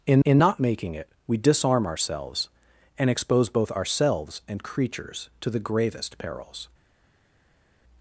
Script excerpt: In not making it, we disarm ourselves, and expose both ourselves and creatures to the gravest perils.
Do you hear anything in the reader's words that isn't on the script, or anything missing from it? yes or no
yes